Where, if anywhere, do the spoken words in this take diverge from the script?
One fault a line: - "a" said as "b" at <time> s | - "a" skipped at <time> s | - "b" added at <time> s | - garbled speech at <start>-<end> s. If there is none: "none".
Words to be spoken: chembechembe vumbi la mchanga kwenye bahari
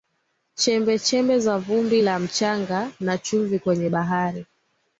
- "za" added at 1.4 s
- "na chumvi" added at 3.0 s